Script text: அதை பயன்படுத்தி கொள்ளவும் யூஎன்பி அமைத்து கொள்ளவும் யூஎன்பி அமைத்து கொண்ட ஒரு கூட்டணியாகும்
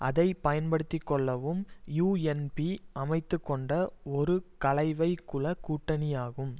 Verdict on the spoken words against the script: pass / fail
fail